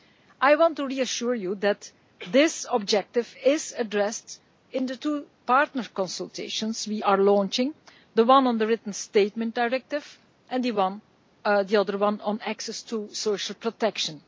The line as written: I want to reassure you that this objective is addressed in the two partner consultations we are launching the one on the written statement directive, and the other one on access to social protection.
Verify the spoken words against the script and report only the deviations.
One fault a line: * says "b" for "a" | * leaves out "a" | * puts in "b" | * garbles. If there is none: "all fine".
all fine